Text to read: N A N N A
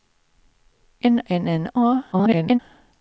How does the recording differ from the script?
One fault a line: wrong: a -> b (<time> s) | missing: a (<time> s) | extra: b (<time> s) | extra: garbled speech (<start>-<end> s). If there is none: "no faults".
missing: A (1.2 s)
extra: garbled speech (2.1-2.6 s)